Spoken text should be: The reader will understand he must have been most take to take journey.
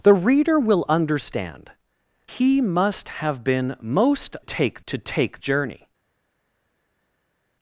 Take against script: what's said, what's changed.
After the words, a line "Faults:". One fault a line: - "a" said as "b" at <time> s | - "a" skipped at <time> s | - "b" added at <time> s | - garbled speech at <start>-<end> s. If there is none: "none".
The reader will understand he must have been most take to take journey.
Faults:
none